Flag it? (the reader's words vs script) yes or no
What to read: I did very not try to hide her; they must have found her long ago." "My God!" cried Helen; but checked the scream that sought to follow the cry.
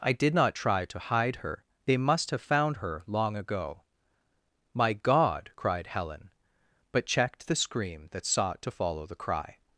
yes